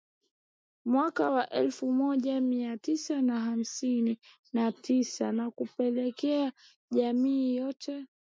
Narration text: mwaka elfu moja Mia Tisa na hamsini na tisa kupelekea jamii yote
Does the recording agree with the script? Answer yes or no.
no